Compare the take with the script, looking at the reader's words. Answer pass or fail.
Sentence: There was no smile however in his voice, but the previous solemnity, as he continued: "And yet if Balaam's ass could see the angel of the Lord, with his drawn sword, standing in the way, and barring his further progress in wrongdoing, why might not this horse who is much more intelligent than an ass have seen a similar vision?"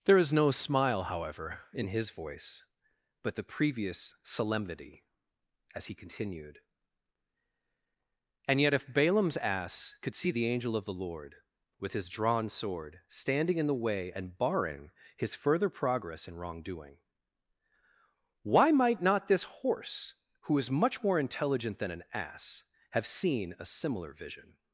fail